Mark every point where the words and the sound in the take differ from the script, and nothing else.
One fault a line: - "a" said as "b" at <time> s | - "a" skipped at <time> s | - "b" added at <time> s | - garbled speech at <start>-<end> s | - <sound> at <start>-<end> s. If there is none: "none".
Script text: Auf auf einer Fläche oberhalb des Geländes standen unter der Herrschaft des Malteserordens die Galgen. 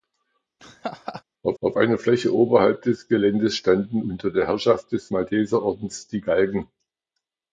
- laugh at 0.6-1.2 s